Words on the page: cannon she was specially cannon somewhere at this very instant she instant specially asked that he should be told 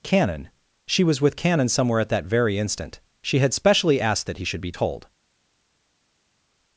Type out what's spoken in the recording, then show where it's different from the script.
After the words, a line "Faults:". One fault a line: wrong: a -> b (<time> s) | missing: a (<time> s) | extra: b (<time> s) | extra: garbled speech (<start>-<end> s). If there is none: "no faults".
cannon she was with cannon somewhere at that very instant she had specially asked that he should be told
Faults:
wrong: specially -> with (1.2 s)
wrong: this -> that (2.1 s)
wrong: instant -> had (3.4 s)